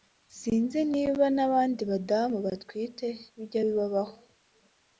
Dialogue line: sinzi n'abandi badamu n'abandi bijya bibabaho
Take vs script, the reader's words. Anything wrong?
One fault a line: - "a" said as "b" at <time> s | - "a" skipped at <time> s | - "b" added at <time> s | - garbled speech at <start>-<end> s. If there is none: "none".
- "niba" added at 0.9 s
- "n'abandi" said as "batwite" at 2.5 s